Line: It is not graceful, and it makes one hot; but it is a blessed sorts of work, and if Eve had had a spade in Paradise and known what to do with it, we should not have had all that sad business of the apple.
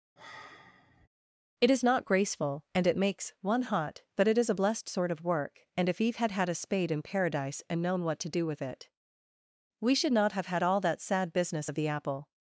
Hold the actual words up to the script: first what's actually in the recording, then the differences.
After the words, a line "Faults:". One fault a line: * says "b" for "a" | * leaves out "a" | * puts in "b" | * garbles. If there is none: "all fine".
It is not graceful, and it makes one hot; but it is a blessed sort of work, and if Eve had had a spade in Paradise and known what to do with it, we should not have had all that sad business of the apple.
Faults:
* says "sort" for "sorts"